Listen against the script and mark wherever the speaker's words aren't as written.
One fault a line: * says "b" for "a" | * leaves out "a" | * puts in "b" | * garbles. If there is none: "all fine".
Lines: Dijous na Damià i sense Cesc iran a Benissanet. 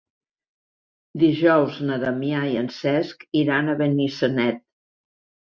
* says "en" for "sense"